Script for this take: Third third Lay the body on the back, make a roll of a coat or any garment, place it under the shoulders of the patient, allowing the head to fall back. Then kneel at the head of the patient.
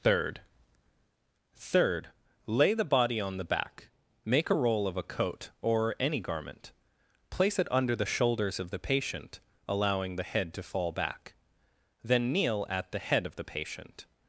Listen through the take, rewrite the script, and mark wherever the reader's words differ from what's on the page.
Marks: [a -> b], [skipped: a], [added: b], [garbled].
Third third Lay the body on the back, make a roll of a coat or any garment, place it under the shoulders of the patient, allowing the head to fall back. Then kneel at the head of the patient.